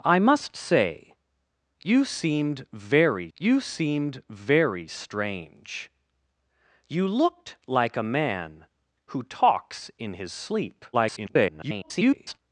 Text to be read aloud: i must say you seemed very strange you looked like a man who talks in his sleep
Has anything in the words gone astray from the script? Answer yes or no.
yes